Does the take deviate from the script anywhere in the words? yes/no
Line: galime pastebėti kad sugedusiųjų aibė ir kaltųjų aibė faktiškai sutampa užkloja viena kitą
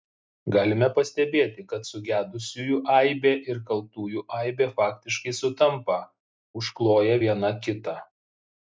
no